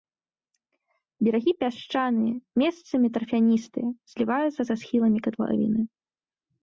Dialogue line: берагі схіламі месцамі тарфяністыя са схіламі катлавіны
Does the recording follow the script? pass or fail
fail